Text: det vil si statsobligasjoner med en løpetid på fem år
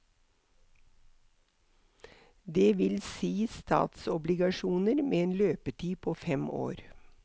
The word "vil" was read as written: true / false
true